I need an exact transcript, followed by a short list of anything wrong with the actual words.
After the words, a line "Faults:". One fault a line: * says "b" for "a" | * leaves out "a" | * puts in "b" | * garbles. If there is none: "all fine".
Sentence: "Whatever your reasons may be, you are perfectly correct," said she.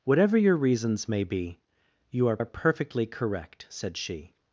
"Whatever your reasons may be, you are are perfectly correct," said she.
Faults:
* puts in "are"